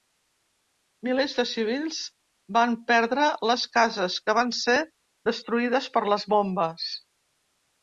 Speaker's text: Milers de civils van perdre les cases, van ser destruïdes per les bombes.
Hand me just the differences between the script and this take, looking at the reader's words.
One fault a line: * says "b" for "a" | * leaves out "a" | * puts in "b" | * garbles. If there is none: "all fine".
* puts in "que"